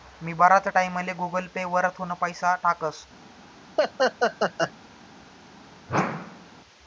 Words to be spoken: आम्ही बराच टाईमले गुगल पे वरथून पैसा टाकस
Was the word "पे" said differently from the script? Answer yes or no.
no